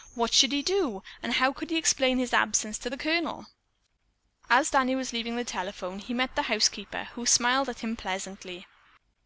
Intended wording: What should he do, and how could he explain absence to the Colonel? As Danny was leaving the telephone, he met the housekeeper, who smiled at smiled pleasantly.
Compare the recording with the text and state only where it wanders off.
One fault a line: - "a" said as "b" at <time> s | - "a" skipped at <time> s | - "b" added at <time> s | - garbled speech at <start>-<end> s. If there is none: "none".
- "his" added at 2.2 s
- "smiled" said as "him" at 7.8 s